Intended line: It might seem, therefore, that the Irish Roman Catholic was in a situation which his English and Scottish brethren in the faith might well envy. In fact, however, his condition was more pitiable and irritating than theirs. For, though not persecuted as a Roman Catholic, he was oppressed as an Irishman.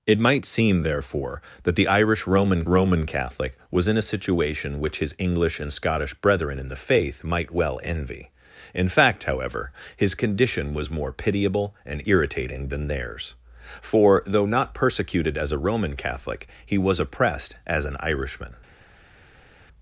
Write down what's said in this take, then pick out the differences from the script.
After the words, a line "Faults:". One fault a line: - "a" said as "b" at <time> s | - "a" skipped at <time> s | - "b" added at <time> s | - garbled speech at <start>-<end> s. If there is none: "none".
It might seem, therefore, that the Irish Roman Roman Catholic was in a situation which his English and Scottish brethren in the faith might well envy. In fact, however, his condition was more pitiable and irritating than theirs. For, though not persecuted as a Roman Catholic, he was oppressed as an Irishman.
Faults:
- "Roman" added at 2.6 s